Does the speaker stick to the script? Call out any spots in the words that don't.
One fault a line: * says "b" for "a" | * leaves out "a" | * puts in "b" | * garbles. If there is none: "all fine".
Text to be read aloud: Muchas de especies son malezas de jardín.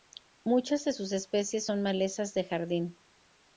* puts in "sus"